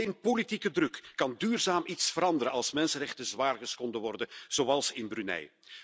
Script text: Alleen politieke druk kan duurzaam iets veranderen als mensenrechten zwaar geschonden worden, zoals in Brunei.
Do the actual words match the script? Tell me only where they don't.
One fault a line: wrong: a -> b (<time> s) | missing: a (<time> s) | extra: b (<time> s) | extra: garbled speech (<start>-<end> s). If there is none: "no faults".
no faults